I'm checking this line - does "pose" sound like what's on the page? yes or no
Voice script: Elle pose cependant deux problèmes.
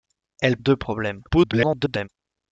no